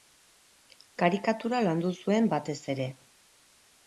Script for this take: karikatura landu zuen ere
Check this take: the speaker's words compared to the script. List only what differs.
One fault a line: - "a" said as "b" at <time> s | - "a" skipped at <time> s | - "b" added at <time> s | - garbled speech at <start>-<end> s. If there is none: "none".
- "batez" added at 2.3 s